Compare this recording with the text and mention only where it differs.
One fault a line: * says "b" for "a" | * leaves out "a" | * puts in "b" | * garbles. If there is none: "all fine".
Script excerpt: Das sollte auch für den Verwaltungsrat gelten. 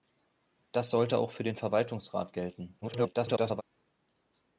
* garbles